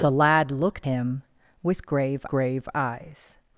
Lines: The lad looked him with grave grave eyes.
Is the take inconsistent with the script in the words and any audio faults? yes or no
no